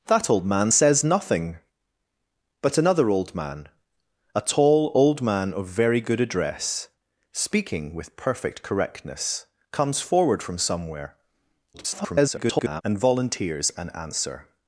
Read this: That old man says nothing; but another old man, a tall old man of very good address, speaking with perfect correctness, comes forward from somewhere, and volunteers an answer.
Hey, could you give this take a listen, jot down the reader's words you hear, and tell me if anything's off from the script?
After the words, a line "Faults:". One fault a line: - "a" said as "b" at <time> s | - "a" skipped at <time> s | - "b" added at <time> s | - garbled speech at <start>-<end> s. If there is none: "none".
That old man says nothing; but another old man, a tall old man of very good address, speaking with perfect correctness, comes forward from somewhere, [garbled] and volunteers an answer.
Faults:
- garbled speech at 11.7-12.8 s